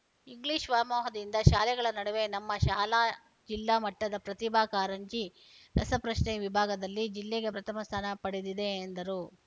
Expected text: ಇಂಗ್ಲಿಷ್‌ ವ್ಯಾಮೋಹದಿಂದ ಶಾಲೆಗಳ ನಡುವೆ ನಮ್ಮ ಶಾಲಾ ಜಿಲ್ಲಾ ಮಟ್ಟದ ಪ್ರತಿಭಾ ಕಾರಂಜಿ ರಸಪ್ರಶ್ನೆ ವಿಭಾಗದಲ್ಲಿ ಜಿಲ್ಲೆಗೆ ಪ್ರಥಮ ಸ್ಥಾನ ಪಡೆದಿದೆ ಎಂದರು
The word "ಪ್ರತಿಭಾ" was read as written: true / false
true